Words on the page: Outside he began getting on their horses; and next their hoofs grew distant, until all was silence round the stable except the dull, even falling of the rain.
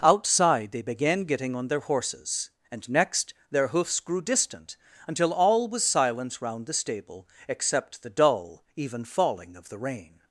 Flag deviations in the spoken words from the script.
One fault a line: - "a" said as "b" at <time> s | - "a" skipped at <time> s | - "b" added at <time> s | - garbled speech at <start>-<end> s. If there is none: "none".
- "he" said as "they" at 0.7 s